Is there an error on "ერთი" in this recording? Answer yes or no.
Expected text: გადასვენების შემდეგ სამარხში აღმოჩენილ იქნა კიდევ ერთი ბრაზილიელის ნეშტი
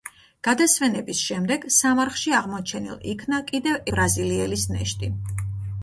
yes